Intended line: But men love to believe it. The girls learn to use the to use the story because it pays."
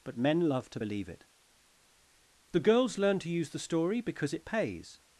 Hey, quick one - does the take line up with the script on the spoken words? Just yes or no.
no